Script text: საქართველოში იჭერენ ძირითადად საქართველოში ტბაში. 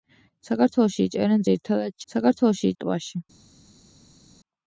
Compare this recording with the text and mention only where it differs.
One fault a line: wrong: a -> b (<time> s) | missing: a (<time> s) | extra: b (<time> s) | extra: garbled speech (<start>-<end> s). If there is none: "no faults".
no faults